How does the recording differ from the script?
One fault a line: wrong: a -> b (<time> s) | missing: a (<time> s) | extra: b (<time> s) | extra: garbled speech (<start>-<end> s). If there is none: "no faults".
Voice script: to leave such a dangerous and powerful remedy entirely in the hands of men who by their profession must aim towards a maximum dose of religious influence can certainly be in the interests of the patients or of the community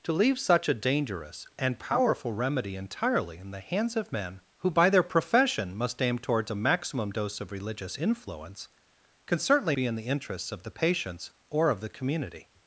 no faults